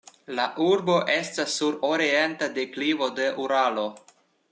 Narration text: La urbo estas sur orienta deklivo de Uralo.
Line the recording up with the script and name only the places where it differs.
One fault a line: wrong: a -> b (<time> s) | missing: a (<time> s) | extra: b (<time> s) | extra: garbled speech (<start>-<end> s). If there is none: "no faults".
no faults